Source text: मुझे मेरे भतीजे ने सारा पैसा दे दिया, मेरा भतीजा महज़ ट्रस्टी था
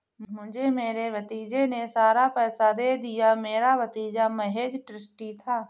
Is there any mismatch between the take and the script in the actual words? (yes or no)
no